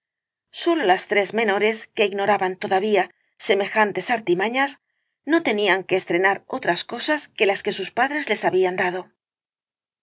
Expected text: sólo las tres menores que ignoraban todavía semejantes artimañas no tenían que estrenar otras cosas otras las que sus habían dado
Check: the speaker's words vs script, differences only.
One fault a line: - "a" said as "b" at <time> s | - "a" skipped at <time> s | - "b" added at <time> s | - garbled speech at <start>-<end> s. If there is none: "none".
- "otras" said as "que" at 7.3 s
- "padres les" added at 7.9 s